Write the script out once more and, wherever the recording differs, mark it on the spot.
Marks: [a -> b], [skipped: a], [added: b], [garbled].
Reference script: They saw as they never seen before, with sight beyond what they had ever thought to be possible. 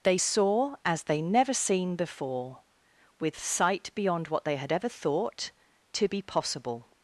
They saw as they never seen before, with sight beyond what they had ever thought to be possible.